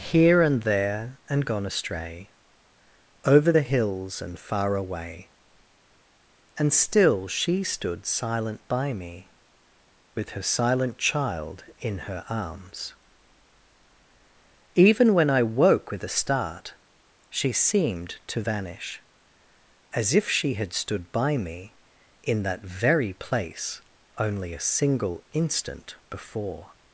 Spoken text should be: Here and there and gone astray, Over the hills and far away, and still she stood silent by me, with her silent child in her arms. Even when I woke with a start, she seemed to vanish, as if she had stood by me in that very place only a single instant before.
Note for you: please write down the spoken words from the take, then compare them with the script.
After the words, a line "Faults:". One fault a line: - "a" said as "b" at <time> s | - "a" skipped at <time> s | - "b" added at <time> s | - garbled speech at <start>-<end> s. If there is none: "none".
Here and there and gone astray, Over the hills and far away, and still she stood silent by me, with her silent child in her arms. Even when I woke with a start, she seemed to vanish, as if she had stood by me in that very place only a single instant before.
Faults:
none